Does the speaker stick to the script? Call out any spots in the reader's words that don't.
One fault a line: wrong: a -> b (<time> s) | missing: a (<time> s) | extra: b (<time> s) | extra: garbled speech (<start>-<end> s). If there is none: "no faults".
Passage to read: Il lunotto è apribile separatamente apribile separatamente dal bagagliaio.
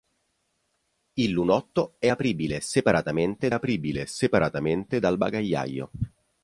no faults